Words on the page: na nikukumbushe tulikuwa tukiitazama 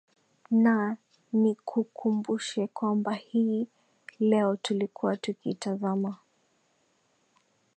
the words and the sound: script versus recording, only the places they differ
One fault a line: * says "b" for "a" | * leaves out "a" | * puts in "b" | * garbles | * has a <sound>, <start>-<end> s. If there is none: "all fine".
* puts in "kwamba hii leo"